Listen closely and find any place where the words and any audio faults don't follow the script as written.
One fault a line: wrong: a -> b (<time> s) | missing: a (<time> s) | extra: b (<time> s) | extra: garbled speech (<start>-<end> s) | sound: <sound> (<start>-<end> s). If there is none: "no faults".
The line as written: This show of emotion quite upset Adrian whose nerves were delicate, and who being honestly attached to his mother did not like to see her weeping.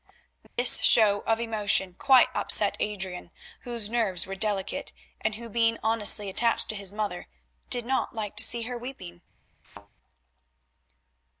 sound: dropout (0.5-0.6 s)
sound: thud (9.6-9.9 s)